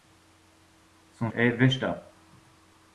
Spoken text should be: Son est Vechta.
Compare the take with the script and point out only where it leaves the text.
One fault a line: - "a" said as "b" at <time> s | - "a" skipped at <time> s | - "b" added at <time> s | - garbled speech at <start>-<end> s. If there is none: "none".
none